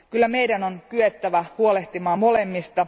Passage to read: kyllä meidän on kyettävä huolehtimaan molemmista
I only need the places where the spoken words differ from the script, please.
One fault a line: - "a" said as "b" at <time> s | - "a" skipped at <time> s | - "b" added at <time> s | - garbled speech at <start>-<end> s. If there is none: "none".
none